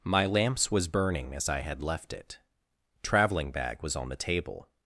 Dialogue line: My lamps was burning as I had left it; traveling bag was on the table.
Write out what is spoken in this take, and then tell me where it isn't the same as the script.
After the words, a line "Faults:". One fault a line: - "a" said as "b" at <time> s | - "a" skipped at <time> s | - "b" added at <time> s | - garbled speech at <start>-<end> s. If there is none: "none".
My lamps was burning as I had left it; traveling bag was on the table.
Faults:
none